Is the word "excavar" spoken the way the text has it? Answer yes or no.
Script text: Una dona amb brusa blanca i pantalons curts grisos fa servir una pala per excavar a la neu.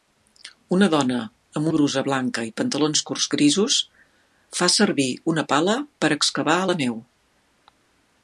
yes